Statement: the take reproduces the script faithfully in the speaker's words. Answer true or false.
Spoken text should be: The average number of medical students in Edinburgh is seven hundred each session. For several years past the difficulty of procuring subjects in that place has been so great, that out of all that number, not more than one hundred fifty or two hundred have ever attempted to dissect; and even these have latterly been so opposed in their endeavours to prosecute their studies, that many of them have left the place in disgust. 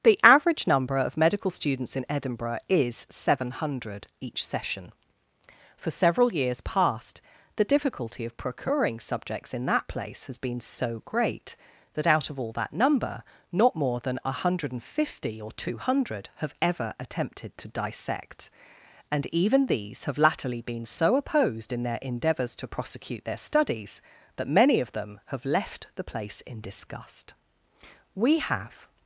false